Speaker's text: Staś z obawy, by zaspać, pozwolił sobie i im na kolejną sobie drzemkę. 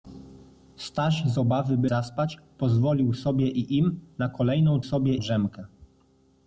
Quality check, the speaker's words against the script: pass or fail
pass